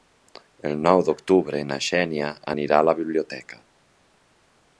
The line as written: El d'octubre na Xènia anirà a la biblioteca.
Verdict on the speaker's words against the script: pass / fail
fail